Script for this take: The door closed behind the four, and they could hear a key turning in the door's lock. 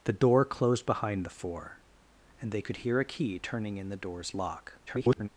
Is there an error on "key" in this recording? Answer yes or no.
no